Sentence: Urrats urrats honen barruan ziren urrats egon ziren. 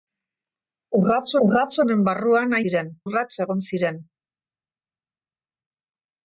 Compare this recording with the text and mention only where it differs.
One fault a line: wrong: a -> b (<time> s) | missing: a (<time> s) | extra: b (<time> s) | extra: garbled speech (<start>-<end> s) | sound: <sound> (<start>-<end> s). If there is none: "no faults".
no faults